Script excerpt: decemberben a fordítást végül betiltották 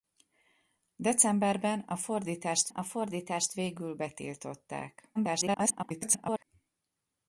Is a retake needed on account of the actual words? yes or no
yes